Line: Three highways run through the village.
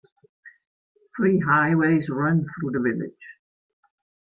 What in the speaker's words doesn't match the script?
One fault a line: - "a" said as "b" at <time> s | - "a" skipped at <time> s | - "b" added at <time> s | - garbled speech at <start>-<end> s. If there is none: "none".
none